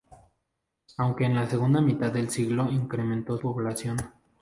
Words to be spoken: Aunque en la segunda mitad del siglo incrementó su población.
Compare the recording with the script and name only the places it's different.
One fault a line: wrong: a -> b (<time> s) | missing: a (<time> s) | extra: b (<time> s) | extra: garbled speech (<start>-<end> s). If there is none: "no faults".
missing: su (3.4 s)